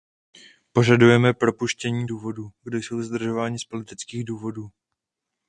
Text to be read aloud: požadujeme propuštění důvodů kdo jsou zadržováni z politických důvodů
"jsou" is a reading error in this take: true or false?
false